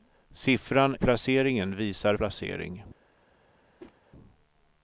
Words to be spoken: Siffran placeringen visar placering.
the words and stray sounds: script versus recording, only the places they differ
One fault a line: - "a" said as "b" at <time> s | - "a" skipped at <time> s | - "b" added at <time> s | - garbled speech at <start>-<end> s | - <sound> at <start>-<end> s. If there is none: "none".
- whoosh at 3.8-3.9 s